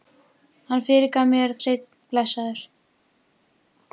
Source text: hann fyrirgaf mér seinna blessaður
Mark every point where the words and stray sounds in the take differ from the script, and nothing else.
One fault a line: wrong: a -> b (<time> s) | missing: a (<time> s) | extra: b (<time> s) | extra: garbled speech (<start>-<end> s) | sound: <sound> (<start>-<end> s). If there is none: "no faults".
no faults